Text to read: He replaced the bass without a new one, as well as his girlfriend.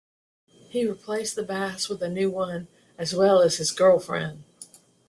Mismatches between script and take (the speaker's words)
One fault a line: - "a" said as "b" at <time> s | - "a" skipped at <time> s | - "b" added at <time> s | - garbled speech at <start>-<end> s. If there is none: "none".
- "without" said as "with" at 1.9 s